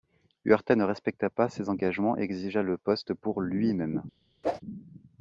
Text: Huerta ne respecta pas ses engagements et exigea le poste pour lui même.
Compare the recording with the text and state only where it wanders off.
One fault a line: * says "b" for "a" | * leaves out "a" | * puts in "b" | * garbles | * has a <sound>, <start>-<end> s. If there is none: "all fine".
* has a whoosh, 4.4-4.6 s